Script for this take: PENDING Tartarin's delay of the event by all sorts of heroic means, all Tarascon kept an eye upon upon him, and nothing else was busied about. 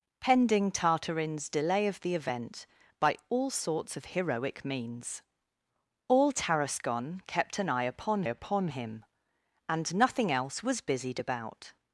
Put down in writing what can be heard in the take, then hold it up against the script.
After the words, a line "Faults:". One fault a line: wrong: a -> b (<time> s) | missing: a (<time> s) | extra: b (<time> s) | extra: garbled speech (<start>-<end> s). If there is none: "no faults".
PENDING Tartarin's delay of the event by all sorts of heroic means, all Tarascon kept an eye upon upon him, and nothing else was busied about.
Faults:
no faults